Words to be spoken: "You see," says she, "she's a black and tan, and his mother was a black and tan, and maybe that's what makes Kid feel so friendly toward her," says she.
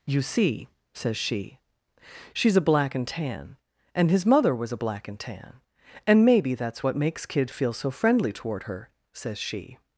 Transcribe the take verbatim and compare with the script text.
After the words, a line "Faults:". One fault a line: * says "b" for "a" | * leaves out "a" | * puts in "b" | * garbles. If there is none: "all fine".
"You see," says she, "she's a black and tan, and his mother was a black and tan, and maybe that's what makes Kid feel so friendly toward her," says she.
Faults:
all fine